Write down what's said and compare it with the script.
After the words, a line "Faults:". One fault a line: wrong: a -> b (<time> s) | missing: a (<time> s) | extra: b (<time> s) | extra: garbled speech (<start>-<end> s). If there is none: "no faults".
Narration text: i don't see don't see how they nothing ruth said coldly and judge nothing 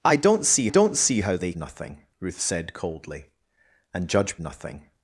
i don't see don't see how they nothing ruth said coldly and judge nothing
Faults:
no faults